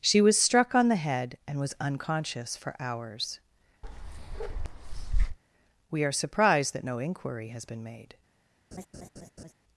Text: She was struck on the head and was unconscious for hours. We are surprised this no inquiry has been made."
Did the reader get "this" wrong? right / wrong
wrong